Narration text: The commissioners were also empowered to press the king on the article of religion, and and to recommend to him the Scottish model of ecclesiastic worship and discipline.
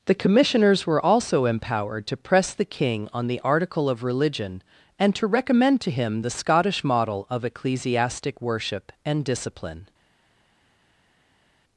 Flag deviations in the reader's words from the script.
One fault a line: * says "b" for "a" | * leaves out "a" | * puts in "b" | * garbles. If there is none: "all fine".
* leaves out "and"